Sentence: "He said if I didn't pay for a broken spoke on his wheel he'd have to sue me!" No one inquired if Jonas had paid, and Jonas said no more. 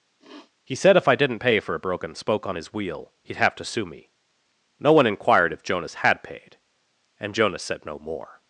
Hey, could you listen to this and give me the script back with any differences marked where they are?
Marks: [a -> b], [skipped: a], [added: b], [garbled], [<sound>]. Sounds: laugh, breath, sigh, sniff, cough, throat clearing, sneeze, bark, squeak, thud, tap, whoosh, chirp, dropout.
[sniff] "He said if I didn't pay for a broken spoke on his wheel he'd have to sue me!" No one inquired if Jonas had paid, and Jonas said no more.